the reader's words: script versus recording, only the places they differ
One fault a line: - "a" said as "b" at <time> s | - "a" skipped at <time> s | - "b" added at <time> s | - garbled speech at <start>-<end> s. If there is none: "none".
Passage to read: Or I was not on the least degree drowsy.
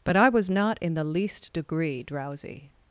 - "Or" said as "But" at 0.0 s
- "on" said as "in" at 0.8 s